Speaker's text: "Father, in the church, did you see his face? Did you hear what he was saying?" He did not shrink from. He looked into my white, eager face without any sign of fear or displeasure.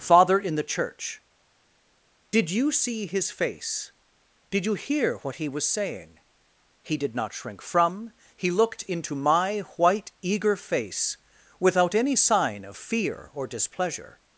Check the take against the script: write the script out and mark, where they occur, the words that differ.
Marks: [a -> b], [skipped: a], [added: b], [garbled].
"Father, in the church, did you see his face? Did you hear what he was saying?" He did not shrink from. He looked into my white, eager face without any sign of fear or displeasure.